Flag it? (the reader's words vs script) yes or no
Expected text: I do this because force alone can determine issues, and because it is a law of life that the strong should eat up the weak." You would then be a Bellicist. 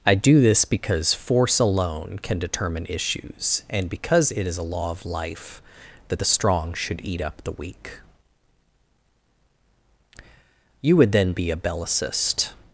no